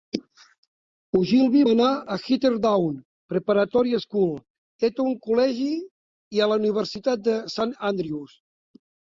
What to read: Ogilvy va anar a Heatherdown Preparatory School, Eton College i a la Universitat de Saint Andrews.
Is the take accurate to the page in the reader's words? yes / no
yes